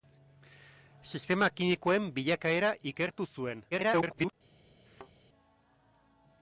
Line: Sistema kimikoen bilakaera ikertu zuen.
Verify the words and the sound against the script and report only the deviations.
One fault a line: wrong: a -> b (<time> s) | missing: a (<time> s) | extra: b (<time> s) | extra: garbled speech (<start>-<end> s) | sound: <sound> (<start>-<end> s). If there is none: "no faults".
extra: garbled speech (3.7-4.3 s)
sound: thud (4.9-5.1 s)